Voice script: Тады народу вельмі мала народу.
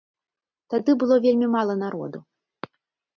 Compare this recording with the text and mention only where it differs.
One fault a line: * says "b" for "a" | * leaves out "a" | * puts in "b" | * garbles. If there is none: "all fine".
* says "было" for "народу"